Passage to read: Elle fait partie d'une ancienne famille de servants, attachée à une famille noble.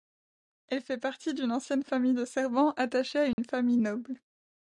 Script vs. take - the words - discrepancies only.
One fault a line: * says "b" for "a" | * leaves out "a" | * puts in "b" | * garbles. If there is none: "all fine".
all fine